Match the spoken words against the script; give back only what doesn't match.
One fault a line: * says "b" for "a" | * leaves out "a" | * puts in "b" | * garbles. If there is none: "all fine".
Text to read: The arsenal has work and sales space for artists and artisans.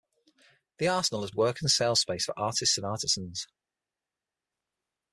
all fine